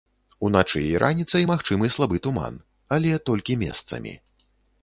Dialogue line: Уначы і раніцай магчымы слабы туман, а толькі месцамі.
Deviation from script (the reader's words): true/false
true